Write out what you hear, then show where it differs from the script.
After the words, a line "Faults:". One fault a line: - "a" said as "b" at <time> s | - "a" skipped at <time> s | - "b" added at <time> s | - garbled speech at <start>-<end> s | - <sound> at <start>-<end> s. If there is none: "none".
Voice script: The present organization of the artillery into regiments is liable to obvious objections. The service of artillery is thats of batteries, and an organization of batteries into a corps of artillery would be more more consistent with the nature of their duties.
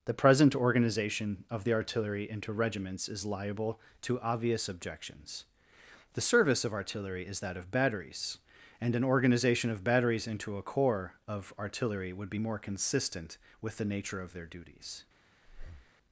The present organization of the artillery into regiments is liable to obvious objections. The service of artillery is that of batteries, and an organization of batteries into a corps of artillery would be more consistent with the nature of their duties.
Faults:
- "thats" said as "that" at 7.4 s
- "more" skipped at 12.6 s
- breath at 15.4-15.9 s